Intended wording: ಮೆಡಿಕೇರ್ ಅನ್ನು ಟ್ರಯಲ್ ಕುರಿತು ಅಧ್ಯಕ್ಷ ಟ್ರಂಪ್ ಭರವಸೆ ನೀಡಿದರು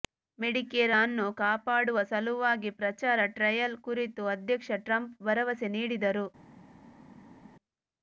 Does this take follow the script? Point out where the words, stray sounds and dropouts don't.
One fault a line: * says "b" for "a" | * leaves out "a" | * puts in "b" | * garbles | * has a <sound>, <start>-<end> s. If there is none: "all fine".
* puts in "ಕಾಪಾಡುವ ಸಲುವಾಗಿ ಪ್ರಚಾರ"